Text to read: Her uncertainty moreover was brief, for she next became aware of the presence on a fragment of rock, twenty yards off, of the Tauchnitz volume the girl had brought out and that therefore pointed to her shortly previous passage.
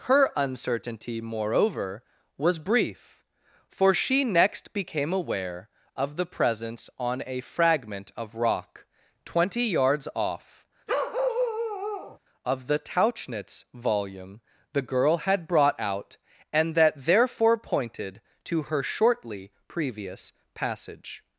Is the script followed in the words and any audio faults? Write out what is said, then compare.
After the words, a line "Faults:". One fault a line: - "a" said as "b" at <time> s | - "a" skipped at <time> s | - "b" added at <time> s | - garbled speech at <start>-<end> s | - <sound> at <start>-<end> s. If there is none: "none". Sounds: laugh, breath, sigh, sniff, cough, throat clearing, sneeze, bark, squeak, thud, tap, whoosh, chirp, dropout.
Her uncertainty moreover was brief, for she next became aware of the presence on a fragment of rock, twenty yards off, of the Tauchnitz volume the girl had brought out and that therefore pointed to her shortly previous passage.
Faults:
- bark at 10.9-12.2 s